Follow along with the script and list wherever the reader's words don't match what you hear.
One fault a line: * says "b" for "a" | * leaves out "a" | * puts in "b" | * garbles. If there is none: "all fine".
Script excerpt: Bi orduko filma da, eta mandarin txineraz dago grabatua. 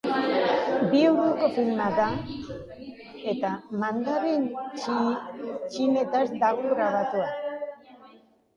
all fine